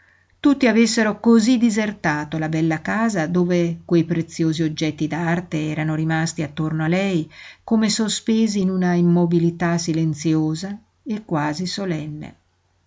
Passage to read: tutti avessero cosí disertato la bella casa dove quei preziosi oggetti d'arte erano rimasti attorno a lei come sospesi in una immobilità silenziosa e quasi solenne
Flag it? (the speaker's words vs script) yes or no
no